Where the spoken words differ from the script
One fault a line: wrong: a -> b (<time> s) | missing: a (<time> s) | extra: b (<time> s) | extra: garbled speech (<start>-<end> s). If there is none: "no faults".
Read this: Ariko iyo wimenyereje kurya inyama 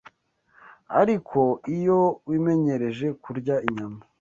no faults